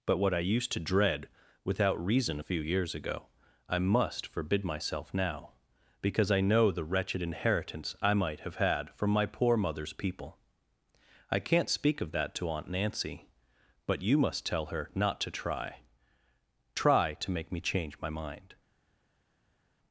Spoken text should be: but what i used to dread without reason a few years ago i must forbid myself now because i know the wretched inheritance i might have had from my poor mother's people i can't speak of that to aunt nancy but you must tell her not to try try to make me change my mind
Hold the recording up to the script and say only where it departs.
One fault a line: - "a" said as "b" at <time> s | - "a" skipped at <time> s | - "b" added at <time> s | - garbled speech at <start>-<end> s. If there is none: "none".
none